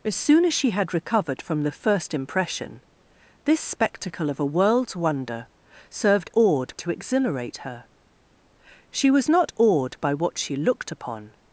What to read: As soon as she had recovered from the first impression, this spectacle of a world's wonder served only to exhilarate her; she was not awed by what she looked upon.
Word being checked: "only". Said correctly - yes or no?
no